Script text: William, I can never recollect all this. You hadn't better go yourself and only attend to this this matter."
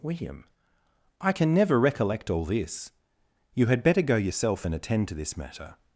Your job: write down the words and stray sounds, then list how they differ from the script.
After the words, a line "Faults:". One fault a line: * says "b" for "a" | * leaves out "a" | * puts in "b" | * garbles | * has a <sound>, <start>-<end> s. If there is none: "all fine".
William, I can never recollect all this. You had better go yourself and attend to this matter."
Faults:
* says "had" for "hadn't"
* leaves out "only"
* leaves out "this"